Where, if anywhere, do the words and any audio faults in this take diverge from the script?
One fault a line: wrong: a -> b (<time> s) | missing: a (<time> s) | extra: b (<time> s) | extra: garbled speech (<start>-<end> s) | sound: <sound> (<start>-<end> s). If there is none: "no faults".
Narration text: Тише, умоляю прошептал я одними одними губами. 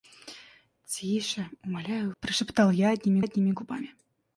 no faults